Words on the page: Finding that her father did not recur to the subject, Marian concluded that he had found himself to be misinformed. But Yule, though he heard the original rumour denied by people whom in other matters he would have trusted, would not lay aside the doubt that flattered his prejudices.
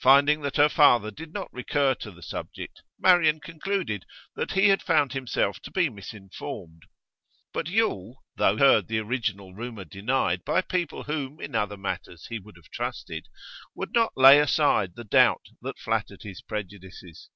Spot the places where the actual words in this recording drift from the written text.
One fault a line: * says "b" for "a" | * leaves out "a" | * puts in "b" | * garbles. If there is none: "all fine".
* leaves out "he"